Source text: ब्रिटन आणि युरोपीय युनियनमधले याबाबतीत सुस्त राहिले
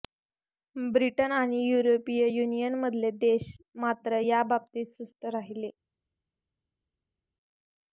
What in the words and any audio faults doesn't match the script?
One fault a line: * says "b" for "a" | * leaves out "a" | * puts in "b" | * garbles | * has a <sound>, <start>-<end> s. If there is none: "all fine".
* puts in "देश मात्र"